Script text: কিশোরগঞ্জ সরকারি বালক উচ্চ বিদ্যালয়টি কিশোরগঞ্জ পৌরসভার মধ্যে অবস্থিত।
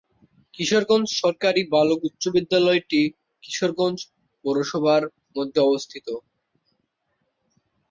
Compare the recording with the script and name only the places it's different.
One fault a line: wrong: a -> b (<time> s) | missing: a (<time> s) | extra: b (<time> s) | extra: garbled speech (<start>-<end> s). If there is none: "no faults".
no faults